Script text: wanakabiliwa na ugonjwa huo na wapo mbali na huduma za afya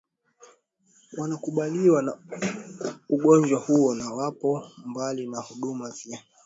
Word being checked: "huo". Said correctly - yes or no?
yes